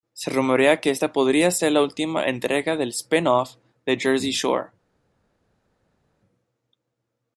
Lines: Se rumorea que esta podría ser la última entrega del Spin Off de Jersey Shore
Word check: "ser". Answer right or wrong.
right